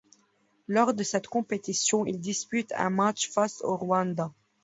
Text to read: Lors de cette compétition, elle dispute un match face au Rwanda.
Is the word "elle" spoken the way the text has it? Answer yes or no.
no